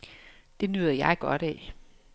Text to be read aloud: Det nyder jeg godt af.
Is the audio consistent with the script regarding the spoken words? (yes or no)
yes